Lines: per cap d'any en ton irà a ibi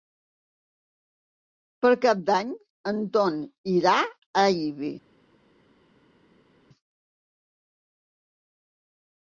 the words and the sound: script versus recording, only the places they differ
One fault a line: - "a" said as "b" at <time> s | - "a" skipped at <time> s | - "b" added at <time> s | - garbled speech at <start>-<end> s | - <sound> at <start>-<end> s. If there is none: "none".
none